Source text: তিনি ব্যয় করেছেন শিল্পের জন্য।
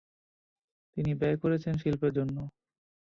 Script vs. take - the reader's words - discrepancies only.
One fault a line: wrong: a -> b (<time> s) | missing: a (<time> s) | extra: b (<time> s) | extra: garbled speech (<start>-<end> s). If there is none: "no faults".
no faults